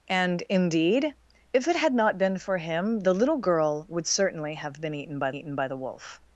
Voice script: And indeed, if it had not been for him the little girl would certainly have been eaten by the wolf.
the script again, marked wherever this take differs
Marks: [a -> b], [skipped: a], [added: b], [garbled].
And indeed, if it had not been for him the little girl would certainly have been eaten by [added: eaten by] the wolf.